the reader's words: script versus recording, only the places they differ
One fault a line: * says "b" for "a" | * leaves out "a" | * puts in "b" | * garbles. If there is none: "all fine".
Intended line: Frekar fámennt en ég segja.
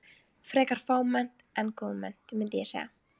* puts in "góðmennt mundi"